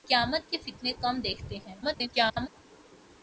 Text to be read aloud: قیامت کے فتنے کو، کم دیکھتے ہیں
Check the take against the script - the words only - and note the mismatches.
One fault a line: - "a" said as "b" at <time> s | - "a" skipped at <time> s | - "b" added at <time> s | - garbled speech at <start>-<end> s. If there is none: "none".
- "کو" skipped at 0.9 s
- garbled speech at 1.8-2.5 s